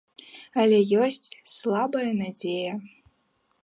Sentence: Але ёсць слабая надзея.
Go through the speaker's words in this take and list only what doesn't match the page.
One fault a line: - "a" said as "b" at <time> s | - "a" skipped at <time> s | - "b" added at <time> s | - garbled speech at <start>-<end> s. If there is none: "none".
none